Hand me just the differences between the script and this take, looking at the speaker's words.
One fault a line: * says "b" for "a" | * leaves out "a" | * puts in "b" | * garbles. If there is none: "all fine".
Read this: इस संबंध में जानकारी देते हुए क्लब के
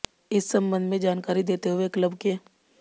all fine